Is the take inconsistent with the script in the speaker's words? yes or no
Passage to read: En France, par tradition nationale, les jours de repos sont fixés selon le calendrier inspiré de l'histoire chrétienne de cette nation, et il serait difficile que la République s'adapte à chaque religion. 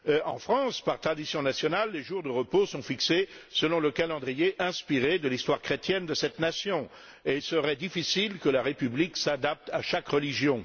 no